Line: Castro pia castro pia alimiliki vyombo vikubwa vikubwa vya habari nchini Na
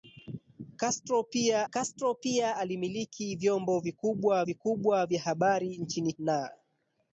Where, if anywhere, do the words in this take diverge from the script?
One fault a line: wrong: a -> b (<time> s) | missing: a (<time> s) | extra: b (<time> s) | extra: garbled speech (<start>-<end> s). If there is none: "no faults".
no faults